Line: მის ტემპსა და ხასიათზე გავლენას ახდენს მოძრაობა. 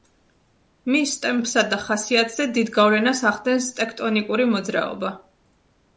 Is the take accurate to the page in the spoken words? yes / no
no